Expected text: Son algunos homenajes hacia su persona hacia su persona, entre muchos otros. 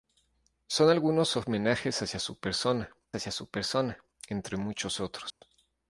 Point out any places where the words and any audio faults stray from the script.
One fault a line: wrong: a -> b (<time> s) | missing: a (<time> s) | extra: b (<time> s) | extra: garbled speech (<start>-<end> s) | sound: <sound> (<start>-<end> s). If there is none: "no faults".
sound: dropout (5.3-5.4 s)